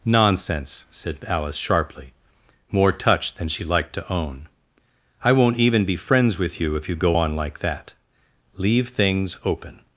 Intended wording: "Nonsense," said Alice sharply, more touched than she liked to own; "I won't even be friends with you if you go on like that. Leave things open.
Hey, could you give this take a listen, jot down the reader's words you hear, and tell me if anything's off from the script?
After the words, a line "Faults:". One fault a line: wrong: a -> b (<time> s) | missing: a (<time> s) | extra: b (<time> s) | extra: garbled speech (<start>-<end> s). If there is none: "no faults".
"Nonsense," said Alice sharply, more touched than she liked to own; "I won't even be friends with you if you go on like that. Leave things open.
Faults:
no faults